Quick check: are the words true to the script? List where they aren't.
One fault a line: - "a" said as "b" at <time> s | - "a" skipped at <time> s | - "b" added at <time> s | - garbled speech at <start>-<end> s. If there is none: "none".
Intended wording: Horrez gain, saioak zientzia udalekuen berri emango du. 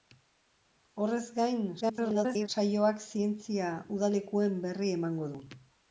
- garbled speech at 1.8-2.5 s